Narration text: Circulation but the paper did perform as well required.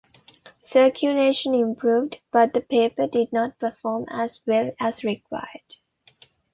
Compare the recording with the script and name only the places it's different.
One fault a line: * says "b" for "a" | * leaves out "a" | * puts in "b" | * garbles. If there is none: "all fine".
* puts in "improved"
* puts in "not"
* puts in "as"